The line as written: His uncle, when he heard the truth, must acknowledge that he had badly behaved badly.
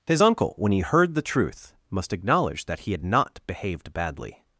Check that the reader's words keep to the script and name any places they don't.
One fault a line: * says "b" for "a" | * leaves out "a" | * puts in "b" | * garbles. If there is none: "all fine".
* says "not" for "badly"